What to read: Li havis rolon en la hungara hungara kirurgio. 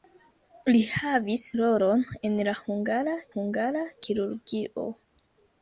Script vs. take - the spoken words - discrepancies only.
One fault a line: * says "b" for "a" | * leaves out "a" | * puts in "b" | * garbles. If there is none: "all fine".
all fine